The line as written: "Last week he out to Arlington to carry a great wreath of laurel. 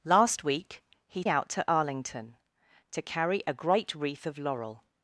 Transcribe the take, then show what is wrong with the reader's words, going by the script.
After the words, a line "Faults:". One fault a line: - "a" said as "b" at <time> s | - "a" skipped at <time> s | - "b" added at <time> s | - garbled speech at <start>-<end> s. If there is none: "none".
"Last week he out to Arlington to carry a great wreath of laurel.
Faults:
none